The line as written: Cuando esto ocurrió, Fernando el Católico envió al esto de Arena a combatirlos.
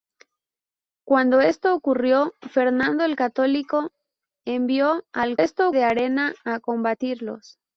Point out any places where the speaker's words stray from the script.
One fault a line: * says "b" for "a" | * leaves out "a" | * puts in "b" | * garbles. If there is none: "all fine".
all fine